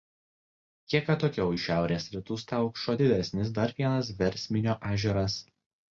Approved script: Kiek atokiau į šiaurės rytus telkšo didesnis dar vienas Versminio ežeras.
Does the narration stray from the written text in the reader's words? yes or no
no